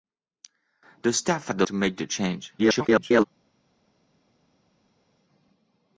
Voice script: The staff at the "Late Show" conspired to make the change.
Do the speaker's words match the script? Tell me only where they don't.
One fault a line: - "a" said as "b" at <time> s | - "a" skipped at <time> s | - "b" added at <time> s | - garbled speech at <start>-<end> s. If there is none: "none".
- "Late Show conspired" skipped at 1.7 s
- garbled speech at 2.6-3.2 s